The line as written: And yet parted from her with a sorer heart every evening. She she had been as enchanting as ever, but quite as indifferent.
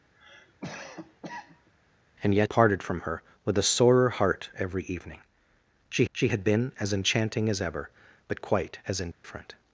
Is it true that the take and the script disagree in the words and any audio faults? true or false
true